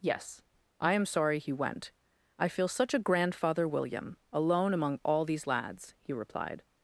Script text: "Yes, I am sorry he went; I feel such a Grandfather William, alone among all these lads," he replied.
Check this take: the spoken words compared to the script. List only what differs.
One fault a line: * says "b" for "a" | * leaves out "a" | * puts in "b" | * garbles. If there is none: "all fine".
all fine